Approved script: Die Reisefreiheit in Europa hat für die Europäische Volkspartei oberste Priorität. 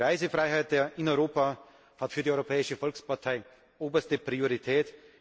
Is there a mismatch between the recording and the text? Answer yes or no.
no